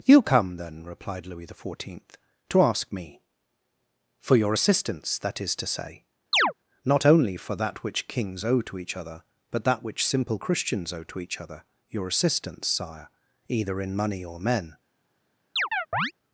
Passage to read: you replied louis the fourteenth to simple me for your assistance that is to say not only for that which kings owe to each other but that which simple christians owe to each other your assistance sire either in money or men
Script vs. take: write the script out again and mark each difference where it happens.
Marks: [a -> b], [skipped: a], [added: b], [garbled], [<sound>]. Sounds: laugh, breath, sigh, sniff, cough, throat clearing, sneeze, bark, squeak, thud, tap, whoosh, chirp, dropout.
you [added: come then] replied louis the fourteenth to [simple -> ask] me for your assistance that is to say [chirp] not only for that which kings owe to each other but that which simple christians owe to each other your assistance sire either in money or men [chirp]